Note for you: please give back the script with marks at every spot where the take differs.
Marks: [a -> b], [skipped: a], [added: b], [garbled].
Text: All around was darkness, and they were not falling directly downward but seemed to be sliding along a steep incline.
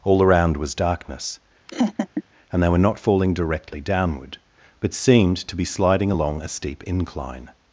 All around was darkness, and they were not falling directly downward but seemed to be sliding along a steep incline.